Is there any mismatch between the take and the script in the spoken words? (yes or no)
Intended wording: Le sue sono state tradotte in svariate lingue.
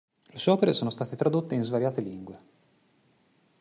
yes